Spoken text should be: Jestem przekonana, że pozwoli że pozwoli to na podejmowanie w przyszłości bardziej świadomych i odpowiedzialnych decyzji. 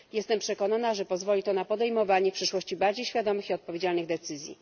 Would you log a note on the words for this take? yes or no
yes